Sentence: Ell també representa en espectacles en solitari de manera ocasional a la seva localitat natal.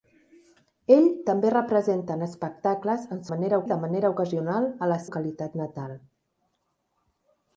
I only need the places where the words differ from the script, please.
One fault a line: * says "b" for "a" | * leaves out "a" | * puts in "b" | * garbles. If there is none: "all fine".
* says "manera" for "solitari"
* leaves out "seva"